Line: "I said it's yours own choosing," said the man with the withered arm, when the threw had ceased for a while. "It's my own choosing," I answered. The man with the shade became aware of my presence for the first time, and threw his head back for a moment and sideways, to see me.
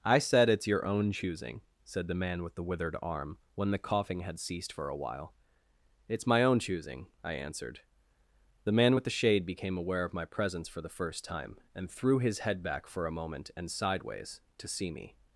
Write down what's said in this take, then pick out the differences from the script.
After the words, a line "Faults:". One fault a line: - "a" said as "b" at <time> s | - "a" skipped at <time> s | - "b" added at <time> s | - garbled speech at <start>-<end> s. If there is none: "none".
"I said it's your own choosing," said the man with the withered arm, when the coughing had ceased for a while. "It's my own choosing," I answered. The man with the shade became aware of my presence for the first time, and threw his head back for a moment and sideways, to see me.
Faults:
- "yours" said as "your" at 0.7 s
- "threw" said as "coughing" at 3.8 s